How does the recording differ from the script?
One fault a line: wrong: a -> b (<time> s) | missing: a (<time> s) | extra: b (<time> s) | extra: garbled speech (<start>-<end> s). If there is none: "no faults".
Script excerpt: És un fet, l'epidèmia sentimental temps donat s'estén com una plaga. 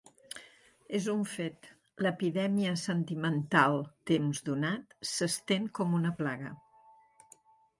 no faults